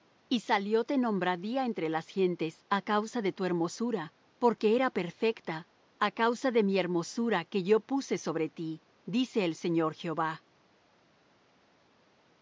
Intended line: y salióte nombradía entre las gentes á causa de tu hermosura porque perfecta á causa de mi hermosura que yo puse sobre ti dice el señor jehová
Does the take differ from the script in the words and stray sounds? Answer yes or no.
yes